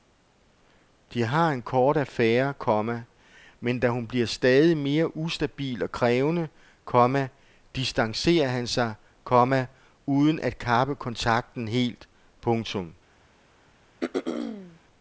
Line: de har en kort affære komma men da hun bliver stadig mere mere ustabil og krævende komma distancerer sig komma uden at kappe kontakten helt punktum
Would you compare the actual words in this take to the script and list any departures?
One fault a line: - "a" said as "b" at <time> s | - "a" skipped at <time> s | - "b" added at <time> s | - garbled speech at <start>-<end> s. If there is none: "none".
- "mere" skipped at 5.2 s
- "han" added at 8.5 s